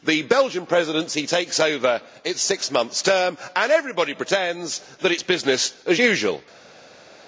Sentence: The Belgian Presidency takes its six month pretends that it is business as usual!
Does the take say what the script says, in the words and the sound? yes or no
no